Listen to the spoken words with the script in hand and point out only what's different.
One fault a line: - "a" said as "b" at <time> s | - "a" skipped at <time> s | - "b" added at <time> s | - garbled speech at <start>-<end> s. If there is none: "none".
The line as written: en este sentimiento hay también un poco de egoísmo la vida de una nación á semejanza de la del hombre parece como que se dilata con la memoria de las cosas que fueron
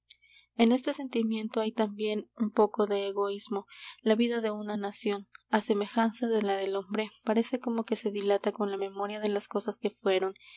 none